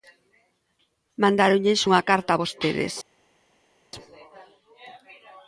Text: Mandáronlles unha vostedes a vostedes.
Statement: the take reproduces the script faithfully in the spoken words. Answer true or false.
false